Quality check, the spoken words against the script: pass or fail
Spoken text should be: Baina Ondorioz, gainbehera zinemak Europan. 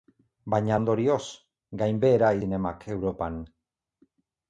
pass